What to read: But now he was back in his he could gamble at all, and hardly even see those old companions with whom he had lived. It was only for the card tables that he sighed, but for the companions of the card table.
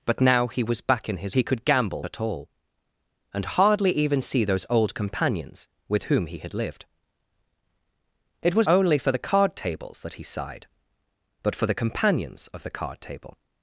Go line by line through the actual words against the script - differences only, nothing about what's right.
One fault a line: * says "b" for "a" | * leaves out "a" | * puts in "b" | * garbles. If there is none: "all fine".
all fine